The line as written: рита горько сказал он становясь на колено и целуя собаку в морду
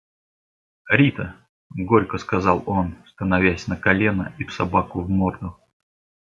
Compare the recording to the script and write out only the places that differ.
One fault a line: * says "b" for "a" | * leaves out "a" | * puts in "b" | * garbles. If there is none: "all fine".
* leaves out "целуя"